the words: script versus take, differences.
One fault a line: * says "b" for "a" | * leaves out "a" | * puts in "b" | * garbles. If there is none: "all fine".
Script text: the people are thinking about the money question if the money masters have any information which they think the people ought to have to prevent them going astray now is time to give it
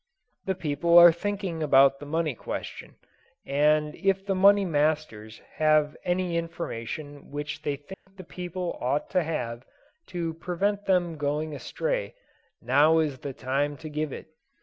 * puts in "and"
* puts in "the"